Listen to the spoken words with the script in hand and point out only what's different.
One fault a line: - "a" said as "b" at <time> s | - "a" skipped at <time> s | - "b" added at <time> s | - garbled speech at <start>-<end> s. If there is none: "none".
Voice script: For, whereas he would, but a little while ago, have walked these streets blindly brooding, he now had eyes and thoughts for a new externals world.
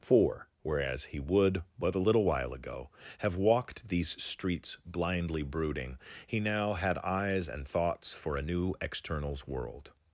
none